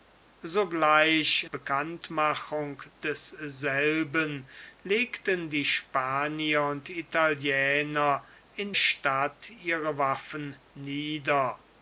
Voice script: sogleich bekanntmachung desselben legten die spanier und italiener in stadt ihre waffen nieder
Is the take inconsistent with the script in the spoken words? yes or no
no